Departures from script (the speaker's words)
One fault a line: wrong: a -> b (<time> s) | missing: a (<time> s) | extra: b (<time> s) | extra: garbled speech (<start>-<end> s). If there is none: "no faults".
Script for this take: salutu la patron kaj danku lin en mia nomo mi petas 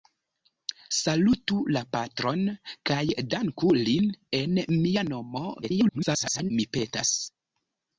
extra: garbled speech (5.6-6.5 s)